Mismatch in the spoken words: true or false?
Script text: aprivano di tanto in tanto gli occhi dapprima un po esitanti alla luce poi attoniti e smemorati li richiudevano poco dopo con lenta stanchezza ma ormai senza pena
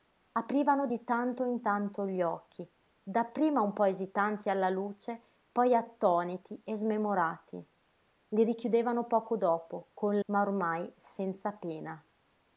true